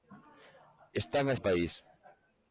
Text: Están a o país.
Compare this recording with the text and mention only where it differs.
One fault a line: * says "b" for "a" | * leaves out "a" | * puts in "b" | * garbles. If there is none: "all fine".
all fine